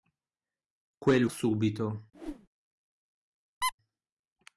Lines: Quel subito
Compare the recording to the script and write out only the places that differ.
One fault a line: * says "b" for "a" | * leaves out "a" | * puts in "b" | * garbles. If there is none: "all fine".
all fine